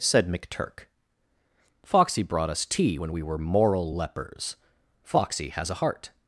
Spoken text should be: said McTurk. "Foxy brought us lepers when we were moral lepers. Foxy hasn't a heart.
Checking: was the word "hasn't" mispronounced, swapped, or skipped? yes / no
yes